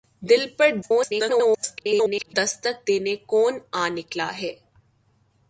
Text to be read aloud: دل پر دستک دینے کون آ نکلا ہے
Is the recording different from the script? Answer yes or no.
yes